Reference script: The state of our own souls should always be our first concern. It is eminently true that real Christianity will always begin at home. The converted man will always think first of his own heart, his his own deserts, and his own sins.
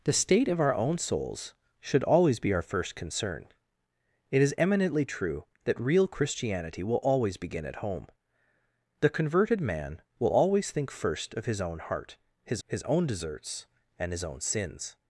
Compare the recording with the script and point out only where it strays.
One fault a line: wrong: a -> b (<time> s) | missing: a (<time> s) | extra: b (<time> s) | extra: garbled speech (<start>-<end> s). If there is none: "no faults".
no faults